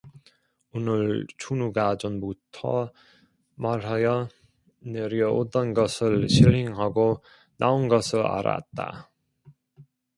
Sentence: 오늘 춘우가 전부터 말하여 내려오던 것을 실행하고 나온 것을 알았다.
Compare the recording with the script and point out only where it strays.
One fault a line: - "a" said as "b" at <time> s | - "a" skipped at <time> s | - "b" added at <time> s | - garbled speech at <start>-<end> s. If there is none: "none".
none